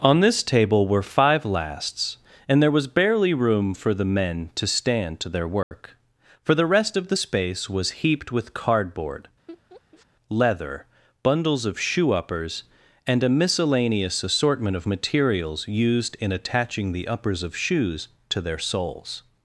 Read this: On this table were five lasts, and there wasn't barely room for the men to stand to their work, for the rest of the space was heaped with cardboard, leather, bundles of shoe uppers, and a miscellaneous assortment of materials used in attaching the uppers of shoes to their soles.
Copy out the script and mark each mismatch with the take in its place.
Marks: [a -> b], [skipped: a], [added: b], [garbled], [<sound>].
On this table were five lasts, and there [wasn't -> was] barely room for the men to stand to their work, [dropout] for the rest of the space was heaped with cardboard, [laugh] leather, bundles of shoe uppers, and a miscellaneous assortment of materials used in attaching the uppers of shoes to their soles.